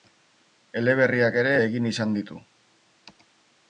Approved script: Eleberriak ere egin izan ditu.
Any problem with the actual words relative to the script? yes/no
no